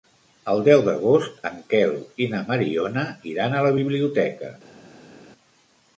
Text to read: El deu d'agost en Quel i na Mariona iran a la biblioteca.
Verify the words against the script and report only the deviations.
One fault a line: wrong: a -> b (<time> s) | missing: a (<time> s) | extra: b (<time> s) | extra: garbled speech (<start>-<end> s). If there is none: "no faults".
no faults